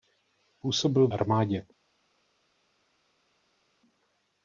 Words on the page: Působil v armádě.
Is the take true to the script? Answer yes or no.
yes